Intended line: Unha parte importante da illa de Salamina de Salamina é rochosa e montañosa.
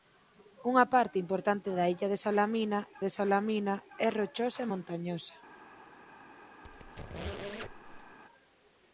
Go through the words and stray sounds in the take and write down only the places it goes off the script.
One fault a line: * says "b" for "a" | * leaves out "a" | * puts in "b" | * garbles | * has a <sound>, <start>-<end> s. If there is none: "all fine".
* has a squeak, 6.6-8.2 s